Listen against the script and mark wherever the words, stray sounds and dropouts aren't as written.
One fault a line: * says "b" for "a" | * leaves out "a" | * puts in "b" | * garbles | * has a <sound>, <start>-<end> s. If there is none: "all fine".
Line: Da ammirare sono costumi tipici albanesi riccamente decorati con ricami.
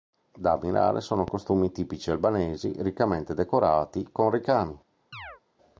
* has a chirp, 5.1-5.4 s